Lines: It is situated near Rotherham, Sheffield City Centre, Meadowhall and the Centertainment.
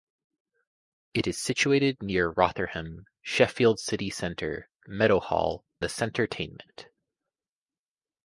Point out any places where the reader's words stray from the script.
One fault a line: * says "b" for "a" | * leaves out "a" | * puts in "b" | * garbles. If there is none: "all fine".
* leaves out "and"